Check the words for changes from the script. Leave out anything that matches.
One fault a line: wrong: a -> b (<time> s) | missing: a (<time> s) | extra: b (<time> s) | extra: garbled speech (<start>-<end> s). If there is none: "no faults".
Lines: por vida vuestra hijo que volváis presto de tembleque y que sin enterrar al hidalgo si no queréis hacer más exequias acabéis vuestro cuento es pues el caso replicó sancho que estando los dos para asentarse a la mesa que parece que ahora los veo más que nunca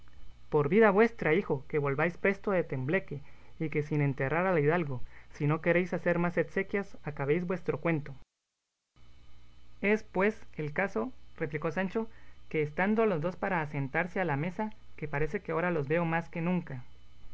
no faults